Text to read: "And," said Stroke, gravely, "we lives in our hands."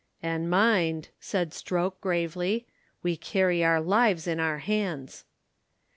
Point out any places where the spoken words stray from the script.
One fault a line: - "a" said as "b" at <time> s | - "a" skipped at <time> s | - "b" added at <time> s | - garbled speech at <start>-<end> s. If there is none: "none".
- "mind" added at 0.5 s
- "carry our" added at 3.2 s